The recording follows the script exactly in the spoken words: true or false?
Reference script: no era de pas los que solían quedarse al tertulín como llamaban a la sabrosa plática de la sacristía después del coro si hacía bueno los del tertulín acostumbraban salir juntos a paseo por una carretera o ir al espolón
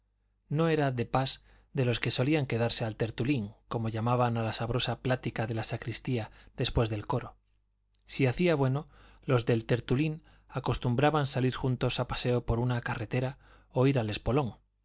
false